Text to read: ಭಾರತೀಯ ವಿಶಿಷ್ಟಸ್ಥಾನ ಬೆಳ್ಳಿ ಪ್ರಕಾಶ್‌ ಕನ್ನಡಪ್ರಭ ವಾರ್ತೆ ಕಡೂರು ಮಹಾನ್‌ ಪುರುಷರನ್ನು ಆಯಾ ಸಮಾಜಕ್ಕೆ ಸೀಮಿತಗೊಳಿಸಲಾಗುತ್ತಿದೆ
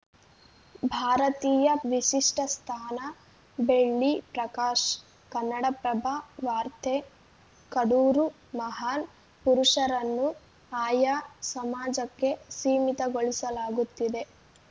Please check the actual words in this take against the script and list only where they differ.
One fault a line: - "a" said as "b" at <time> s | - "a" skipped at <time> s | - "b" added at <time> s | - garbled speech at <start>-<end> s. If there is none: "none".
none